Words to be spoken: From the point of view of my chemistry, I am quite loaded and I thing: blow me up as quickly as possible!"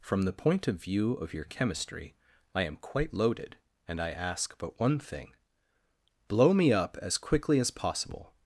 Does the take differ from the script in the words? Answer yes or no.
yes